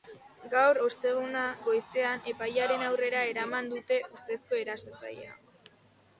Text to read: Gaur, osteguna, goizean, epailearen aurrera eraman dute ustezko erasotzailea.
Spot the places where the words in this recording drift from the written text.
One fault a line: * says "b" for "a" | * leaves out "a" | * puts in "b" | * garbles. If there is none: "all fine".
all fine